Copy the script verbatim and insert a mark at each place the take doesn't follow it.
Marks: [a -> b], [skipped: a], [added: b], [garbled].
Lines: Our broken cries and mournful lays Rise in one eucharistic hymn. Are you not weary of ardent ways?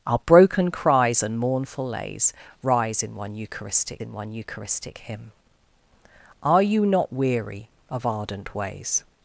Our broken cries and mournful lays Rise in one eucharistic [added: in one eucharistic] hymn. Are you not weary of ardent ways?